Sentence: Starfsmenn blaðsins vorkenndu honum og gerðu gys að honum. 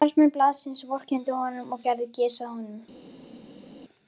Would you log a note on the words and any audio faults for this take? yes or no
no